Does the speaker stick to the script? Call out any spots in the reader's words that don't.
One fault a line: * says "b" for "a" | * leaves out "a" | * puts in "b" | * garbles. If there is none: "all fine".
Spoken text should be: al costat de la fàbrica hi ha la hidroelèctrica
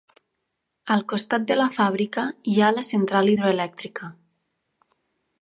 * puts in "central"